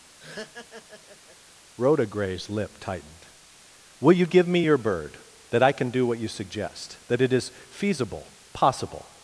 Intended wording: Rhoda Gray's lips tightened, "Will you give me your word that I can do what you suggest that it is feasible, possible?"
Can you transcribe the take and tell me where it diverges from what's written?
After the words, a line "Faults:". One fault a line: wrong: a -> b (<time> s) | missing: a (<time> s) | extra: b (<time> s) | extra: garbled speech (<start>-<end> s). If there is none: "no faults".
Rhoda Gray's lip tightened, "Will you give me your bird that I can do what you suggest that it is feasible, possible?"
Faults:
wrong: lips -> lip (2.5 s)
wrong: word -> bird (4.8 s)